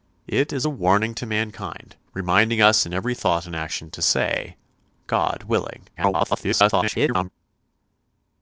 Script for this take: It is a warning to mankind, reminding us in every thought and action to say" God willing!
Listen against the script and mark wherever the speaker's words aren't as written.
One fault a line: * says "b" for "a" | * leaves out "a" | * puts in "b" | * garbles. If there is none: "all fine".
* garbles